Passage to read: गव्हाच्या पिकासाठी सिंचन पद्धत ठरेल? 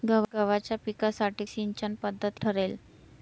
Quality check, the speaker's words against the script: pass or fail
pass